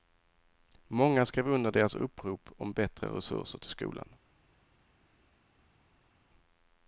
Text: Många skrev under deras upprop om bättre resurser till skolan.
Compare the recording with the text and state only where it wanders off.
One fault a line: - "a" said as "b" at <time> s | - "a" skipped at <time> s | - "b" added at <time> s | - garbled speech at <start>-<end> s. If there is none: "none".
none